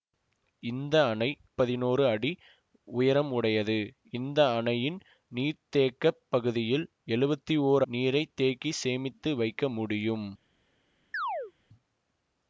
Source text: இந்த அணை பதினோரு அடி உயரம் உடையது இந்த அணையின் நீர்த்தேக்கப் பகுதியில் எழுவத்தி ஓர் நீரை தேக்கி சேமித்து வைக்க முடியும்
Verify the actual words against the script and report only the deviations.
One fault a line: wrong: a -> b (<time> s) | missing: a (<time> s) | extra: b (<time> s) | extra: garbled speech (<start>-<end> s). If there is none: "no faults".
no faults